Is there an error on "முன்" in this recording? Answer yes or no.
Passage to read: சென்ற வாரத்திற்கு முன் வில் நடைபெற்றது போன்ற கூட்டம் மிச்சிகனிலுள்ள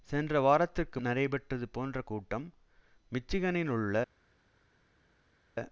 yes